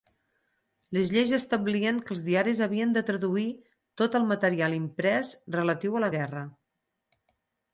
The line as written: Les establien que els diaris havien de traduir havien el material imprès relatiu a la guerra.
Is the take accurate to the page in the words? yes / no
no